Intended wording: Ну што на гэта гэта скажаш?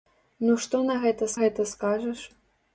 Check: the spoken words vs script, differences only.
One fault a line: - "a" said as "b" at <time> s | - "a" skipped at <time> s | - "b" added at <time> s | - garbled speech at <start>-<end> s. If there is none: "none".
none